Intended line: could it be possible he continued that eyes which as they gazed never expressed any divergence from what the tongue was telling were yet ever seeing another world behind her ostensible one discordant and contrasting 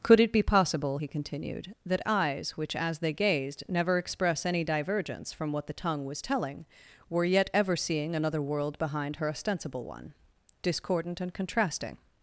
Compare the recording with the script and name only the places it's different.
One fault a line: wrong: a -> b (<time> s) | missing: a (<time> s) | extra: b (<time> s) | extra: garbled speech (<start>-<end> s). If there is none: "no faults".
wrong: expressed -> express (4.0 s)